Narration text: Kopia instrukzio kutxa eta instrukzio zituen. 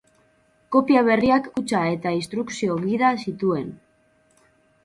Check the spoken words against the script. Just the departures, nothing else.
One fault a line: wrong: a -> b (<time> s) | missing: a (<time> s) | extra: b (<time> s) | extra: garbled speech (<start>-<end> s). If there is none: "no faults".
wrong: instrukzio -> berriak (1.1 s)
extra: gida (2.9 s)